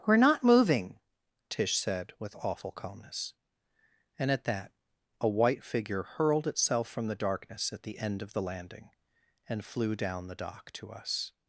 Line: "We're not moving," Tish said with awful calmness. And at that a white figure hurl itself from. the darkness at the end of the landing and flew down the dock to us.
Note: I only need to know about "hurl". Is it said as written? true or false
false